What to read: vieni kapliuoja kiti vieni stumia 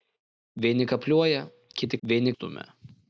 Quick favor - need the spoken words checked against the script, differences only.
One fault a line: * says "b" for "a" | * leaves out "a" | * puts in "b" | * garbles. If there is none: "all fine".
all fine